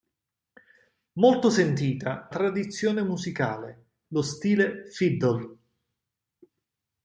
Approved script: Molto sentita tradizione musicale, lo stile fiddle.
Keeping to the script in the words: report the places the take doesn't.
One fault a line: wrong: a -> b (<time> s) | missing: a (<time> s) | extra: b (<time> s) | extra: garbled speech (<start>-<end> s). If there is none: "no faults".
no faults